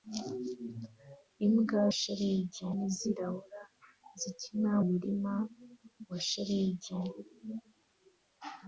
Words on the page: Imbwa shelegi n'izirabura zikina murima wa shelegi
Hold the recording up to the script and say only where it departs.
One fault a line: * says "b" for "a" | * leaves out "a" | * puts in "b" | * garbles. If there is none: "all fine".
all fine